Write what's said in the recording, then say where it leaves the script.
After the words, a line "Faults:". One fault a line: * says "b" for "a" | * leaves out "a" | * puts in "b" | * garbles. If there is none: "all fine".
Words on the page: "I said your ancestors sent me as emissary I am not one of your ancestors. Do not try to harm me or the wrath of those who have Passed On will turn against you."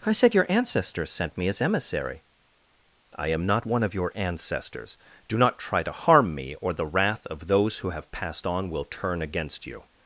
"I said your ancestors sent me as emissary I am not one of your ancestors. Do not try to harm me or the wrath of those who have Passed On will turn against you."
Faults:
all fine